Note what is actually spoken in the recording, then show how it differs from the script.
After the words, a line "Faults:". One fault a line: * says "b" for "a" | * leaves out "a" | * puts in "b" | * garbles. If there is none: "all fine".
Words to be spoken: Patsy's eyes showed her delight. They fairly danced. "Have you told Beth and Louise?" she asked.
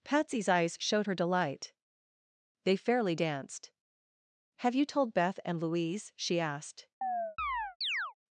Patsy's eyes showed her delight. They fairly danced. "Have you told Beth and Louise?" she asked.
Faults:
all fine